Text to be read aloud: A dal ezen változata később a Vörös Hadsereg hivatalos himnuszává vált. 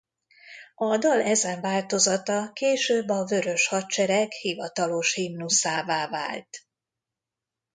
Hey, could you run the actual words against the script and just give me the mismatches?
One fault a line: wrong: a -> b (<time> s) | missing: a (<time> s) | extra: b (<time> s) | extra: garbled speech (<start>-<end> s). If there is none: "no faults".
no faults